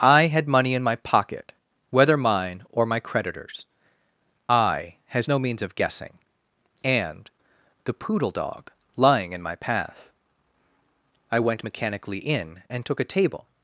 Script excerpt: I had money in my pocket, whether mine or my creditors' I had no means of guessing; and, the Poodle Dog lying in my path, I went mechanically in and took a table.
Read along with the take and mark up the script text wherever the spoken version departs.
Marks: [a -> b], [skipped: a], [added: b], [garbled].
I had money in my pocket, whether mine or my creditors' I [had -> has] no means of guessing; and, the Poodle Dog lying in my path, I went mechanically in and took a table.